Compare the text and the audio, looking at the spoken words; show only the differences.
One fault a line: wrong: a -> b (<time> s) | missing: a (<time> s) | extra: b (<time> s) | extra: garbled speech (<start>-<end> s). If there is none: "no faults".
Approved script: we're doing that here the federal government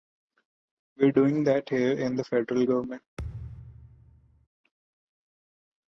extra: in (1.9 s)